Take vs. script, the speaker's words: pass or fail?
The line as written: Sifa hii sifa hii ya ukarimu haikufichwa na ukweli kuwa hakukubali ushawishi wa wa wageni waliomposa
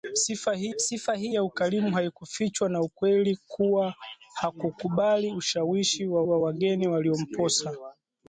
pass